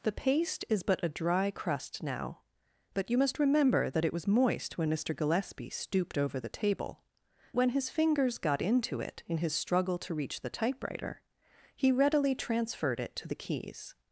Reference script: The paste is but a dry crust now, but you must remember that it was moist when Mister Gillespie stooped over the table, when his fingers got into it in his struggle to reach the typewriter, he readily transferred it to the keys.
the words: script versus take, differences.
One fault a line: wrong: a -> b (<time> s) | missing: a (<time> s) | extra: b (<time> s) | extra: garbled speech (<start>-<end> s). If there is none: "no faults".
no faults